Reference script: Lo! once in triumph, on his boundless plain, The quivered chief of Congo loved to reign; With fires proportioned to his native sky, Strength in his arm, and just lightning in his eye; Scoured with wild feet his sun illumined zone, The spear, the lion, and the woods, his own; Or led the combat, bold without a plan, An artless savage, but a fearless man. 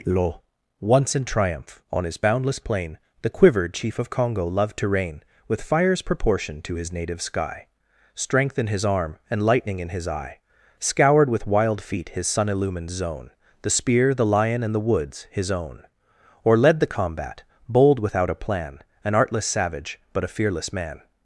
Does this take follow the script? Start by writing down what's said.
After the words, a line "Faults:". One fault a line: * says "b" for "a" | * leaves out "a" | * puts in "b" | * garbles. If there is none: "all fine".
Lo! once in triumph, on his boundless plain, The quivered chief of Congo loved to reign; With fires proportioned to his native sky, Strength in his arm, and lightning in his eye; Scoured with wild feet his sun illumined zone, The spear, the lion, and the woods, his own; Or led the combat, bold without a plan, An artless savage, but a fearless man.
Faults:
* leaves out "just"